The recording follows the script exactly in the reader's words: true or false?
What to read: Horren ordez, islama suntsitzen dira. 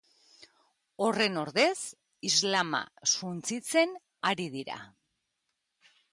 false